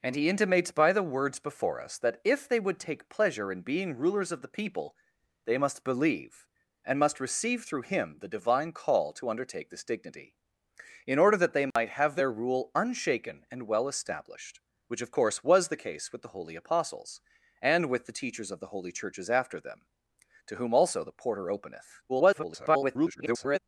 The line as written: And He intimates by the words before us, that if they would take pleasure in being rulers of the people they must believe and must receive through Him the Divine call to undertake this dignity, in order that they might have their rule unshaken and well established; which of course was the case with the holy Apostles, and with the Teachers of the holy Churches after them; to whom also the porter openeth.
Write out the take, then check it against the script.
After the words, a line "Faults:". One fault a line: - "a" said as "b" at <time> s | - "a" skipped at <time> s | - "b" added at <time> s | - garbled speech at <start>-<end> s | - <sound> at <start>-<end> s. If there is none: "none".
And He intimates by the words before us, that if they would take pleasure in being rulers of the people they must believe and must receive through Him the Divine call to undertake this dignity, in order that they might have their rule unshaken and well established; which of course was the case with the holy Apostles, and with the Teachers of the holy Churches after them; to whom also the porter openeth. [garbled]
Faults:
- dropout at 11.7-11.8 s
- garbled speech at 22.1-23.6 s